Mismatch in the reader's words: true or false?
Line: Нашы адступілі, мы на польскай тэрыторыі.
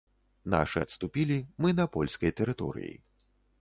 false